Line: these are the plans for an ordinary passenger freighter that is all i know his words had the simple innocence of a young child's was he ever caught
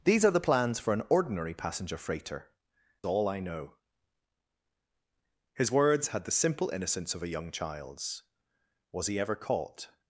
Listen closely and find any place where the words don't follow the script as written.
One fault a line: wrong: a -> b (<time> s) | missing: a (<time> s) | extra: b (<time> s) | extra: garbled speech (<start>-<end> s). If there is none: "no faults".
missing: that is (2.5 s)